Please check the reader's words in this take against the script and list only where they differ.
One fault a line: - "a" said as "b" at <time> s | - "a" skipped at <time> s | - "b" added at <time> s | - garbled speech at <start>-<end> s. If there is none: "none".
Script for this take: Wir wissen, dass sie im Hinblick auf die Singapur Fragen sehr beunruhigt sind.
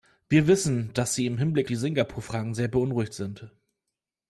- "auf" skipped at 1.7 s